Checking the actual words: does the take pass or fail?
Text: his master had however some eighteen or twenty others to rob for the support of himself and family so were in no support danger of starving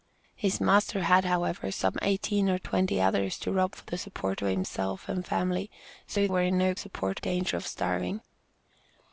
pass